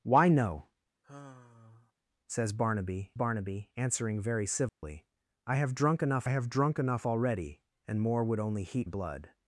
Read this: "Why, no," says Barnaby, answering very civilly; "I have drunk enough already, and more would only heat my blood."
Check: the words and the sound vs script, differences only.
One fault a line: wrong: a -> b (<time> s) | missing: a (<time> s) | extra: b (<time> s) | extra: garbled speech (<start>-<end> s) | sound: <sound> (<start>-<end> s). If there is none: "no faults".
sound: sigh (1.0-1.9 s)
extra: Barnaby (3.1 s)
sound: dropout (4.7-4.8 s)
extra: have drunk enough (6.3 s)
missing: my (8.9 s)